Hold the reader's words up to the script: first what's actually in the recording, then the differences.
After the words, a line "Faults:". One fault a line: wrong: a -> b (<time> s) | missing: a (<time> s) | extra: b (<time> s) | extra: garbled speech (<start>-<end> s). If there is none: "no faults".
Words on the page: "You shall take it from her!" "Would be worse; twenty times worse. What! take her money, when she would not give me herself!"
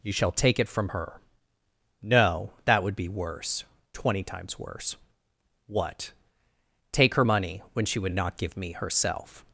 "You shall take it from her!" "No; that would be worse; twenty times worse. What! take her money, when she would not give me herself!"
Faults:
extra: No that (2.0 s)